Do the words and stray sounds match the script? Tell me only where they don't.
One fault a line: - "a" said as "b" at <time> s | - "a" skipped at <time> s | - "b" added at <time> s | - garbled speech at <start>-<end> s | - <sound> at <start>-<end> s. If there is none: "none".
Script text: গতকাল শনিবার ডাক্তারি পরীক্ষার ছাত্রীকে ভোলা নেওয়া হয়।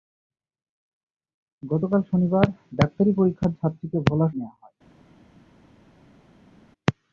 none